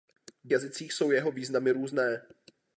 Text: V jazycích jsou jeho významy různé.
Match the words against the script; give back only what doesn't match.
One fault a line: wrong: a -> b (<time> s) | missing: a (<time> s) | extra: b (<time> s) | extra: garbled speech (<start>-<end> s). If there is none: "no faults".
no faults